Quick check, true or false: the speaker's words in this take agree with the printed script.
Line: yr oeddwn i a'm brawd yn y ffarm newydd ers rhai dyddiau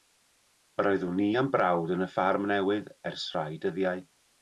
true